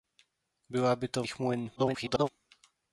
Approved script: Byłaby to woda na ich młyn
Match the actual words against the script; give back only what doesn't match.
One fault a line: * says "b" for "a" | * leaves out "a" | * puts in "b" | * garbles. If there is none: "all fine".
* leaves out "woda na"
* garbles